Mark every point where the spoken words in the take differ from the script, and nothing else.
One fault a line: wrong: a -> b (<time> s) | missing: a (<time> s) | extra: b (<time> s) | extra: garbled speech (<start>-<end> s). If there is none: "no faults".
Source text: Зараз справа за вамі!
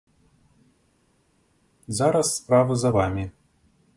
no faults